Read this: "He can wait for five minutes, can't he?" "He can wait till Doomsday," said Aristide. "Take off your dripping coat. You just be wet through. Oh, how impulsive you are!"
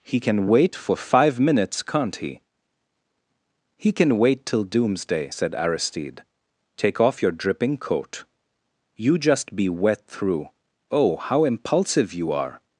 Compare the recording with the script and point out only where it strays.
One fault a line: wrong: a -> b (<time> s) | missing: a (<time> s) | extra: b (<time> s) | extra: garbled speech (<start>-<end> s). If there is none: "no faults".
no faults